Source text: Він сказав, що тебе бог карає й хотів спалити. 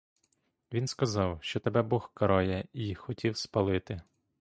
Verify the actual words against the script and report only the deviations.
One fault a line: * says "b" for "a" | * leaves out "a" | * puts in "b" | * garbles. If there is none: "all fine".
all fine